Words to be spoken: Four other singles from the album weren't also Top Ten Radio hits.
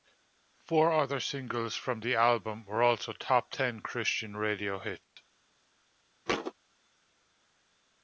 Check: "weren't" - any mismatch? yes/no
yes